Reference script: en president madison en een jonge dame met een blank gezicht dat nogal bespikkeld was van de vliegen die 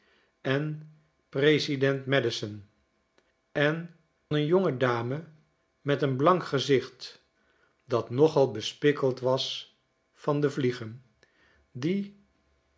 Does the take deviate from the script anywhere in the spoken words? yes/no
no